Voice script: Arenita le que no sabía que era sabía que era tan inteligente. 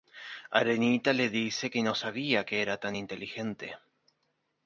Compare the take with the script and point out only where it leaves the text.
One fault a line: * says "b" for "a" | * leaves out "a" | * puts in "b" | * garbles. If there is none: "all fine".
* puts in "dice"
* leaves out "sabía que era"